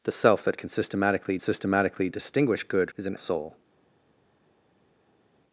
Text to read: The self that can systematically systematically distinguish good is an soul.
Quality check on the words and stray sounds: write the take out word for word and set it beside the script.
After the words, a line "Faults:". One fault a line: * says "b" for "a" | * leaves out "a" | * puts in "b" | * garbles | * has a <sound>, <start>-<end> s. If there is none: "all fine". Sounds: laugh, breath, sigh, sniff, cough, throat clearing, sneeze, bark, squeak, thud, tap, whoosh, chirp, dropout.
The self that can systematically systematically distinguish good is an soul.
Faults:
all fine